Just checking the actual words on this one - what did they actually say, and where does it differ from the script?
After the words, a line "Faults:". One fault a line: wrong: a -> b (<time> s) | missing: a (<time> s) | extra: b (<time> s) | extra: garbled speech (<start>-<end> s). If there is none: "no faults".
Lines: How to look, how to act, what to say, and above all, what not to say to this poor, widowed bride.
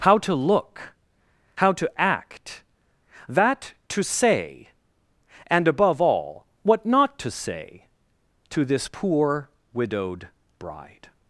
How to look, how to act, that to say, and above all, what not to say to this poor, widowed bride.
Faults:
wrong: what -> that (3.3 s)